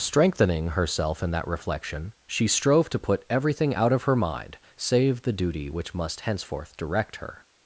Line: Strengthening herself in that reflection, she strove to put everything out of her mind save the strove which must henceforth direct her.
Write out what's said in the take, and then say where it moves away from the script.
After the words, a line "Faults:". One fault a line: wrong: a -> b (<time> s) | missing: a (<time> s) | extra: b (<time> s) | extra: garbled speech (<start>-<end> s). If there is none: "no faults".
Strengthening herself in that reflection, she strove to put everything out of her mind save the duty which must henceforth direct her.
Faults:
wrong: strove -> duty (5.3 s)